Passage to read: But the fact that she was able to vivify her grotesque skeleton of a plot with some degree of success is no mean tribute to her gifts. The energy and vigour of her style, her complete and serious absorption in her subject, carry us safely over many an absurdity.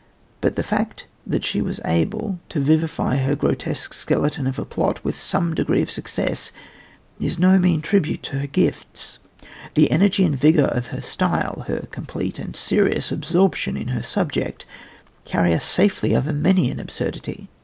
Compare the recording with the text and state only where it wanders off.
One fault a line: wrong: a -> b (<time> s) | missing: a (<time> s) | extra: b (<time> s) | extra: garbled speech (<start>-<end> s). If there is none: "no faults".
no faults